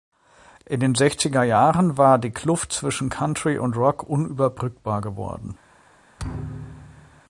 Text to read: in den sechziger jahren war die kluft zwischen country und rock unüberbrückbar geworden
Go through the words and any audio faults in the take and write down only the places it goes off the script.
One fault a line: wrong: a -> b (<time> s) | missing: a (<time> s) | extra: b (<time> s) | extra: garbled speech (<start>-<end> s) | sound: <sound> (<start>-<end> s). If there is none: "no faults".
sound: thud (6.2-7.2 s)